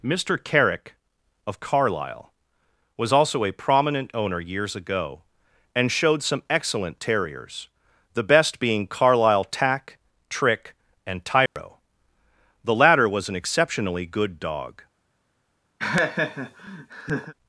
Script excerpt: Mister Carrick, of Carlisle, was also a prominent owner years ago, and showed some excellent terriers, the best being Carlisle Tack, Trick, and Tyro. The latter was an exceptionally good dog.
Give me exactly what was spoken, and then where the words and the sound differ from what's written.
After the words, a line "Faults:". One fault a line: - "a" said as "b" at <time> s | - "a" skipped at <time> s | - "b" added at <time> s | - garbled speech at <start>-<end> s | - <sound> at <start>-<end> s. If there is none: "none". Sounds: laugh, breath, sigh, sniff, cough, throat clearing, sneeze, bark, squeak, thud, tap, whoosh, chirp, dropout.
Mister Carrick, of Carlisle, was also a prominent owner years ago, and showed some excellent terriers, the best being Carlisle Tack, Trick, and Tyro. The latter was an exceptionally good dog.
Faults:
- dropout at 11.5-11.6 s
- laugh at 15.8-17.3 s